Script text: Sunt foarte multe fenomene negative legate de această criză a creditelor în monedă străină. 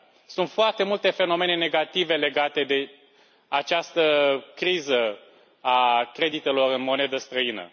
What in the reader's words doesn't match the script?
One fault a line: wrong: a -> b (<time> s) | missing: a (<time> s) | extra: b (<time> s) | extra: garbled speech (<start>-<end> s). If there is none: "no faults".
no faults